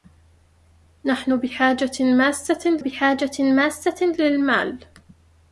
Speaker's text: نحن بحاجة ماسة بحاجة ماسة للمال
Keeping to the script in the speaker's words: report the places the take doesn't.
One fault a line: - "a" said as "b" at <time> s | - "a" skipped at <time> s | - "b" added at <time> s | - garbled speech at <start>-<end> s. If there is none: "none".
none